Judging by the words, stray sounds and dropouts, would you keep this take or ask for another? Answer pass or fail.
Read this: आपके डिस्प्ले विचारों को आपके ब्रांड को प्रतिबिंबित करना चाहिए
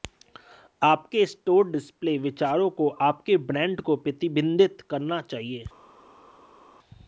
fail